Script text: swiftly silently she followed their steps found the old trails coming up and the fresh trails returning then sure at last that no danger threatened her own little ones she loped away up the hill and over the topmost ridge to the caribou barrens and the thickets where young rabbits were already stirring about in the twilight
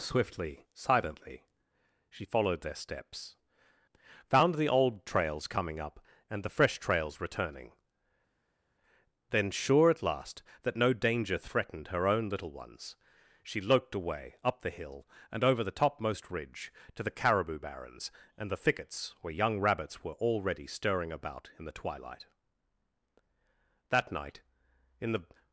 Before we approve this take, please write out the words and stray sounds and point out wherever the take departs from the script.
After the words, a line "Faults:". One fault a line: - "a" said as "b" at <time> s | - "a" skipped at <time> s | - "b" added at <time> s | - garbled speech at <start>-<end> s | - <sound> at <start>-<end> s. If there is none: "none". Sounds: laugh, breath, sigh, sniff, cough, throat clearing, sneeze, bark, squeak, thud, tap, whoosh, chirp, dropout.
swiftly silently she followed their steps found the old trails coming up and the fresh trails returning then sure at last that no danger threatened her own little ones she loped away up the hill and over the topmost ridge to the caribou barrens and the thickets where young rabbits were already stirring about in the twilight that night in the
Faults:
- "that night in the" added at 23.9 s